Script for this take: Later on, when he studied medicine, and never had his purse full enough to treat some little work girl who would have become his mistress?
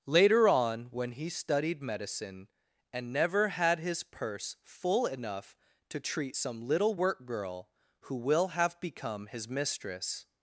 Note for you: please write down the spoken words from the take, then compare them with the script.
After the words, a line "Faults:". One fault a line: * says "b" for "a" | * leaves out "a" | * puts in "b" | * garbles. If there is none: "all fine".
Later on, when he studied medicine, and never had his purse full enough to treat some little work girl who will have become his mistress?
Faults:
* says "will" for "would"